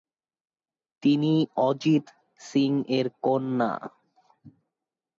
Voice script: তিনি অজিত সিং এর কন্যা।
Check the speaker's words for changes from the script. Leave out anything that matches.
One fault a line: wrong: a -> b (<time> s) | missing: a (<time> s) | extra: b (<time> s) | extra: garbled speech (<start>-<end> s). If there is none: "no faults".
no faults